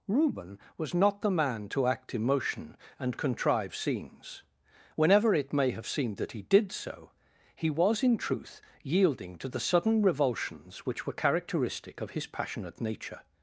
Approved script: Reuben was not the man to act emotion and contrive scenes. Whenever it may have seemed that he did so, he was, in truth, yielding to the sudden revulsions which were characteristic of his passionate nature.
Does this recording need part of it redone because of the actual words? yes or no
no